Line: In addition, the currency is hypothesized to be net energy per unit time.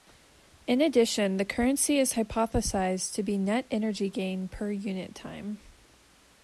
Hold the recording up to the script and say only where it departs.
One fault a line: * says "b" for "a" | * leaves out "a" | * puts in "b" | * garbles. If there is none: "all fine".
* puts in "gain"